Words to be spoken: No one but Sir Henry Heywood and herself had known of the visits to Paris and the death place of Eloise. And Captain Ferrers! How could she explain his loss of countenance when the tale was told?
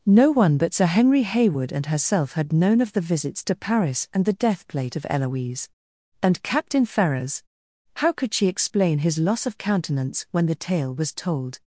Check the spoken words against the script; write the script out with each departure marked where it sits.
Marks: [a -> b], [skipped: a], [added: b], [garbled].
No one but Sir Henry Heywood and herself had known of the visits to Paris and the death [place -> plate] of Eloise. And Captain Ferrers! How could she explain his loss of countenance when the tale was told?